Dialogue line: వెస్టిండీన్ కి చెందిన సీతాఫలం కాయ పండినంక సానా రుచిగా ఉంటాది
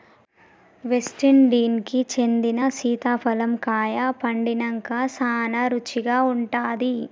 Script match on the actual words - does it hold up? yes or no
yes